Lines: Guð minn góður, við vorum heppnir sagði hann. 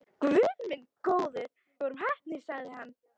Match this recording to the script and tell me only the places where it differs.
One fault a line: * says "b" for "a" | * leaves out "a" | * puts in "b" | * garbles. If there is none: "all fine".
* leaves out "við"